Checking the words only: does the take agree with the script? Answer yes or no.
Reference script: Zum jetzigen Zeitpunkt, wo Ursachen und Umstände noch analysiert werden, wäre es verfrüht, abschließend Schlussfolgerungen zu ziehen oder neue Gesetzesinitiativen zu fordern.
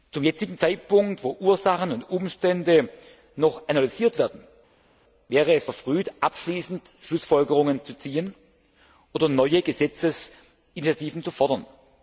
yes